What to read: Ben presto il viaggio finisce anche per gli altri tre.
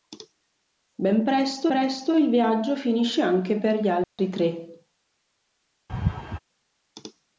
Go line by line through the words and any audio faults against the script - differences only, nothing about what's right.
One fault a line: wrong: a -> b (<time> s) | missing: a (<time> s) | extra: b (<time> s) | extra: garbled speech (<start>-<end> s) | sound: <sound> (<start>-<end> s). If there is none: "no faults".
extra: presto (1.7 s)
sound: dropout (4.0-4.2 s)
sound: laugh (5.9-6.4 s)